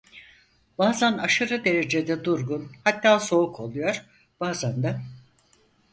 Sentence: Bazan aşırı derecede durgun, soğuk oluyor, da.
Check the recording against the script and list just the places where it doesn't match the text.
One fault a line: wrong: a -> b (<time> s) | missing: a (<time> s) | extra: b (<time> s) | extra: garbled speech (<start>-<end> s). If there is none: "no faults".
extra: hatta (2.8 s)
extra: bazan (4.4 s)